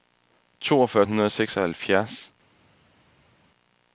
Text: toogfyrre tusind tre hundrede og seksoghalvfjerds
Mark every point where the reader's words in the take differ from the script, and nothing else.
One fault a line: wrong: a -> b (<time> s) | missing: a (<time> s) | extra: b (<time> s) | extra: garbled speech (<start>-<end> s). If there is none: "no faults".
missing: tusind tre (1.1 s)